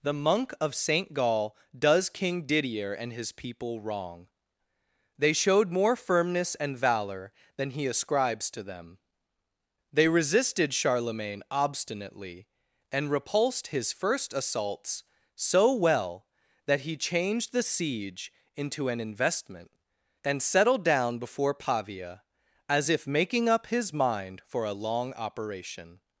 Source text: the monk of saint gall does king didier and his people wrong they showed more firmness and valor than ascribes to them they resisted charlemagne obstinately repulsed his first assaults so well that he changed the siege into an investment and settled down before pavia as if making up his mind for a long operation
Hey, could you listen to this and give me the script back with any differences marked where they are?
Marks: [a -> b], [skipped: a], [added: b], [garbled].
the monk of saint gall does king didier and his people wrong they showed more firmness and valor than [added: he] ascribes to them they resisted charlemagne obstinately [added: and] repulsed his first assaults so well that he changed the siege into an investment and settled down before pavia as if making up his mind for a long operation